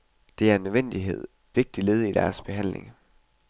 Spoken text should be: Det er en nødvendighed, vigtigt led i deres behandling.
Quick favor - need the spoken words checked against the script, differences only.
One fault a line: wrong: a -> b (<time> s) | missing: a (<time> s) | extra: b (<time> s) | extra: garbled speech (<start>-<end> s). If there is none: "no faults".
no faults